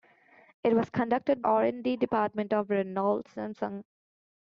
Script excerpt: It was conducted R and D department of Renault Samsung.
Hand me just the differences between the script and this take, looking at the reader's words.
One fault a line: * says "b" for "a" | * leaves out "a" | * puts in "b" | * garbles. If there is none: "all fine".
all fine